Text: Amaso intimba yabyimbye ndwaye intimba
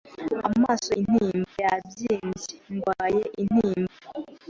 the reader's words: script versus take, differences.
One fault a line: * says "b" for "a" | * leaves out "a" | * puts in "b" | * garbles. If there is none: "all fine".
all fine